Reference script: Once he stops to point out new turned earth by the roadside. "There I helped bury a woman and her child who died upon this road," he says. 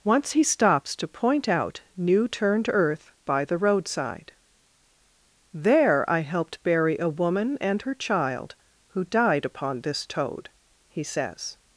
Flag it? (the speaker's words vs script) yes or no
yes